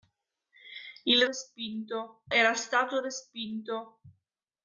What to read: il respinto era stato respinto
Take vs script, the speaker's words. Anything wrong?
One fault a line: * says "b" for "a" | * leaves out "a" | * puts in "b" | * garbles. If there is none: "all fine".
all fine